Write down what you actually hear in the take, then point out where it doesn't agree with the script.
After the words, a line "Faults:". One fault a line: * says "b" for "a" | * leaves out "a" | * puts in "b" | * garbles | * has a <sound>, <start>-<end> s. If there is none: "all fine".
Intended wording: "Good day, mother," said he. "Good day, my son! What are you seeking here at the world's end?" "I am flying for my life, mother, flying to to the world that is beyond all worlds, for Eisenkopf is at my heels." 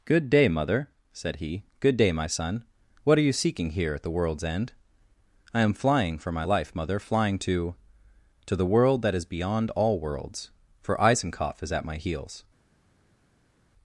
"Good day, mother," said he. "Good day, my son! What are you seeking here at the world's end?" "I am flying for my life, mother, flying to to the world that is beyond all worlds, for Eisenkopf is at my heels."
Faults:
all fine